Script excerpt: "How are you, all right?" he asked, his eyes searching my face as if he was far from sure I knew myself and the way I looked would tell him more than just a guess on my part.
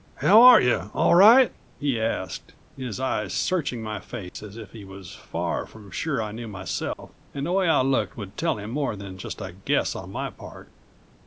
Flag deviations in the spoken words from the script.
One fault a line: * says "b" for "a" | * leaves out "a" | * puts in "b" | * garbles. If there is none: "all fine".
all fine